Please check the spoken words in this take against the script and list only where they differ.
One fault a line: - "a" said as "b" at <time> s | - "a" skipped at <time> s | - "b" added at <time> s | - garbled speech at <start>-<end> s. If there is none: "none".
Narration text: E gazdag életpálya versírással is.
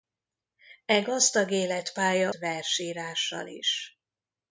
none